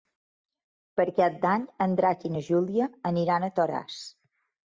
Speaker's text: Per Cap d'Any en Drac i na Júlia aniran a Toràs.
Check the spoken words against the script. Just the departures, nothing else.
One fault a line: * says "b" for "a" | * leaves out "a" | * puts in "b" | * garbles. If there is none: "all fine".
all fine